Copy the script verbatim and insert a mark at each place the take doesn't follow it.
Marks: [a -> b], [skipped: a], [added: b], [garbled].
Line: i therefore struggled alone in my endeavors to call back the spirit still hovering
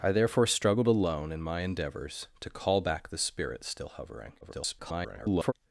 i therefore struggled alone in my endeavors to call back the spirit still hovering [garbled]